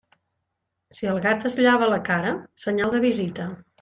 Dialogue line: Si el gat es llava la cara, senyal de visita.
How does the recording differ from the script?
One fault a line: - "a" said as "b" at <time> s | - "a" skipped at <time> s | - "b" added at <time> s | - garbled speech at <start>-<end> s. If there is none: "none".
none